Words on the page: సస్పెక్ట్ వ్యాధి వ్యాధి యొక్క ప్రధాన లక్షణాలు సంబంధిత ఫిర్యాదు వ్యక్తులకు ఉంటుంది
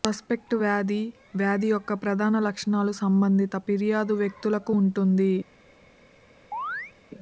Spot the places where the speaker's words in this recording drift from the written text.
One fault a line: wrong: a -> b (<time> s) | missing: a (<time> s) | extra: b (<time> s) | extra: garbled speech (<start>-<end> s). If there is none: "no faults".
no faults